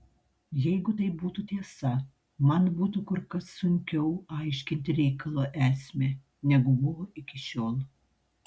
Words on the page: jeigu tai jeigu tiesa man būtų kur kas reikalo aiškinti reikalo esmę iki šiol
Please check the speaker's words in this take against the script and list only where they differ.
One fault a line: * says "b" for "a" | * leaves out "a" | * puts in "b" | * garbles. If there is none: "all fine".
* says "būtų" for "jeigu"
* says "sunkiau" for "reikalo"
* puts in "negu buvo"